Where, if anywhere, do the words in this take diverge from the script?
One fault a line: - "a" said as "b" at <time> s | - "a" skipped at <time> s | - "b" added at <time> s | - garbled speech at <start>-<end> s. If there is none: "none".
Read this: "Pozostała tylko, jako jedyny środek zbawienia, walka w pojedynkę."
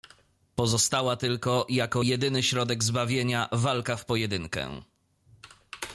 none